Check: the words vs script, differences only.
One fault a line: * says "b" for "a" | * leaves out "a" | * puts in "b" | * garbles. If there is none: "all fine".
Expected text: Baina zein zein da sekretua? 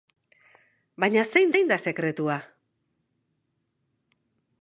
all fine